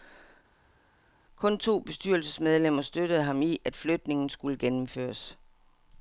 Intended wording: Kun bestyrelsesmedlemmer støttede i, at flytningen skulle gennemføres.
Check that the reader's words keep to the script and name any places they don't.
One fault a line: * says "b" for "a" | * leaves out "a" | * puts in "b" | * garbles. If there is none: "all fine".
* puts in "to"
* puts in "ham"